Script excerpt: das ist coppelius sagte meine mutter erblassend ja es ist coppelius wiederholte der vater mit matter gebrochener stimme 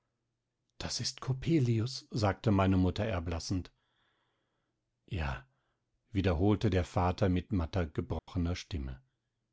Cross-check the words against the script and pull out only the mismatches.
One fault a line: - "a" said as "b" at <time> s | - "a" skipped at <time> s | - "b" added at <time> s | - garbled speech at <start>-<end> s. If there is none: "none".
- "es ist coppelius" skipped at 5.5 s